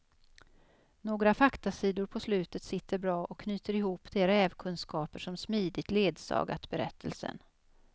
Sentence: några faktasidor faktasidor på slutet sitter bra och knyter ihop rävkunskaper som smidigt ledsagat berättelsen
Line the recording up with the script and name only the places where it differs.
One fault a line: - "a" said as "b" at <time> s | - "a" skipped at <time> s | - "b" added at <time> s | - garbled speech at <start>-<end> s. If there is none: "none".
- "faktasidor" skipped at 2.0 s
- "de" added at 4.1 s